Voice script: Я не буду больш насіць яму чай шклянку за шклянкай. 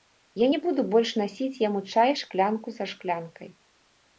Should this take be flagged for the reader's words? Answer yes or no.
no